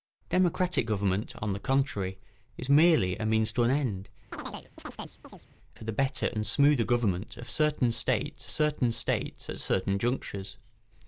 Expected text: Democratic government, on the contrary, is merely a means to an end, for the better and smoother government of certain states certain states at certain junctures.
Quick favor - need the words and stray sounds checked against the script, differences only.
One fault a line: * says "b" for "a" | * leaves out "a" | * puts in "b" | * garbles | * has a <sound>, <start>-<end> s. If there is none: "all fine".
* has a chirp, 4.3-5.5 s